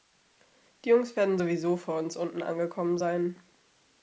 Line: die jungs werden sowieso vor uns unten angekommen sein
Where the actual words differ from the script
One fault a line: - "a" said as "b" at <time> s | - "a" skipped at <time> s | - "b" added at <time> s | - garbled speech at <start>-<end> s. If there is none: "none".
none